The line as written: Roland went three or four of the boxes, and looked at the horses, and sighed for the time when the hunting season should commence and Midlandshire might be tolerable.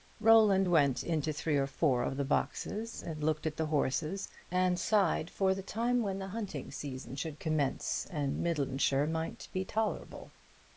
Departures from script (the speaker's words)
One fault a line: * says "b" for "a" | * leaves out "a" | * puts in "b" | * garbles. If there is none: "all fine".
* puts in "into"